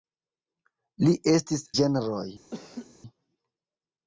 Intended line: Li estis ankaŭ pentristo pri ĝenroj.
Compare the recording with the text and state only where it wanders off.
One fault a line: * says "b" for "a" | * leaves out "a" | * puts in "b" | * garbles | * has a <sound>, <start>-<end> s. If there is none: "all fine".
* leaves out "ankaŭ pentristo pri"
* has a laugh, 2.5-3.0 s